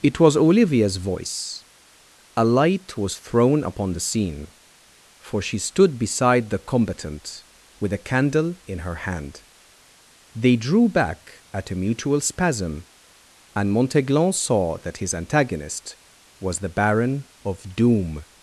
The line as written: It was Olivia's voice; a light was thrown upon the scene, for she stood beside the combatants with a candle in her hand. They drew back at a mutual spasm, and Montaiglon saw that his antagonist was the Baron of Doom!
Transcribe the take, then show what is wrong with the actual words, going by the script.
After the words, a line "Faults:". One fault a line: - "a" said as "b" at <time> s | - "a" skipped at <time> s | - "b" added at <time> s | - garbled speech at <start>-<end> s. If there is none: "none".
It was Olivia's voice; a light was thrown upon the scene, for she stood beside the combatant with a candle in her hand. They drew back at a mutual spasm, and Montaiglon saw that his antagonist was the Baron of Doom!
Faults:
- "combatants" said as "combatant" at 6.6 s